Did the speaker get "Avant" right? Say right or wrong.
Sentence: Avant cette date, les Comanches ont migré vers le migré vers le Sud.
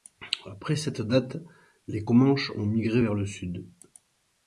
wrong